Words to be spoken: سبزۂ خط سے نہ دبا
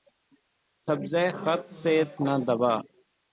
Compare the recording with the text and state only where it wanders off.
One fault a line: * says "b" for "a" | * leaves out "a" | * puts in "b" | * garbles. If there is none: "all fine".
all fine